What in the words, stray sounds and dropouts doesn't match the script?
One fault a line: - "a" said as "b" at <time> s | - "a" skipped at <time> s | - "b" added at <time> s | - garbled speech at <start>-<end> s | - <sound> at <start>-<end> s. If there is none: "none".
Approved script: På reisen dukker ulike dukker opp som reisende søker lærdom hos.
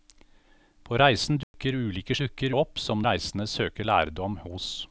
- dropout at 1.4-1.5 s